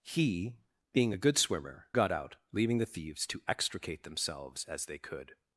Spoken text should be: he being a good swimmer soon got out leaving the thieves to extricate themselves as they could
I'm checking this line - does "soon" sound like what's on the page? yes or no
no